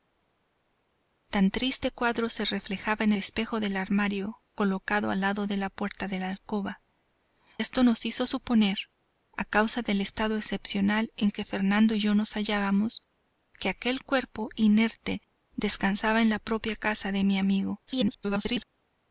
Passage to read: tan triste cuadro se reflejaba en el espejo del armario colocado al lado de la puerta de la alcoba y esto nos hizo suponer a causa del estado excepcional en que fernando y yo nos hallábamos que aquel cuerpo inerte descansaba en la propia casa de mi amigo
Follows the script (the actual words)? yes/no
no